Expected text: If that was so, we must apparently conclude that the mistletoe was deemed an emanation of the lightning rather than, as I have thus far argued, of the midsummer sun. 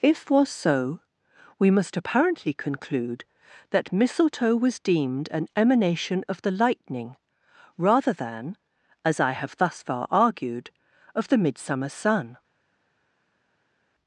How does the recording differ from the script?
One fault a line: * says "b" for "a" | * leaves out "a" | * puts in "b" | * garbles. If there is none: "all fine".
* leaves out "that"
* leaves out "the"